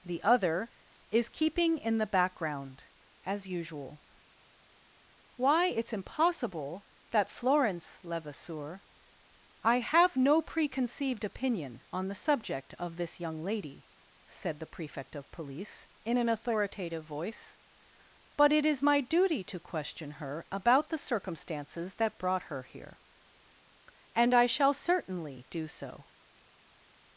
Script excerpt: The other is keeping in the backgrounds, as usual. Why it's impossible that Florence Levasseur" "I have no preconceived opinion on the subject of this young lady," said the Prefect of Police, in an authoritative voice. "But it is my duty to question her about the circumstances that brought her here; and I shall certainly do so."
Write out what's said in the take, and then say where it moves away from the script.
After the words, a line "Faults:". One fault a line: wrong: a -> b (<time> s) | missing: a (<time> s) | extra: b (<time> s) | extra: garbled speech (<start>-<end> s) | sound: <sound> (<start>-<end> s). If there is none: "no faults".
The other is keeping in the background, as usual. Why it's impossible that Florence Levasseur" "I have no preconceived opinion on the subject of this young lady," said the Prefect of Police, in an authoritative voice. "But it is my duty to question her about the circumstances that brought her here; and I shall certainly do so."
Faults:
wrong: backgrounds -> background (2.1 s)